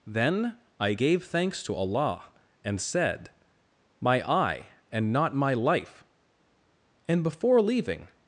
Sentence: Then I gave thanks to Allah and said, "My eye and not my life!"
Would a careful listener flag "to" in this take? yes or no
no